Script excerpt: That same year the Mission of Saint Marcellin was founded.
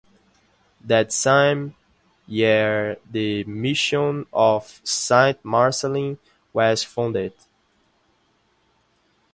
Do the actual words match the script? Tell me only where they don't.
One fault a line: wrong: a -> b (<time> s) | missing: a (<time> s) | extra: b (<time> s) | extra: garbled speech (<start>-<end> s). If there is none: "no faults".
no faults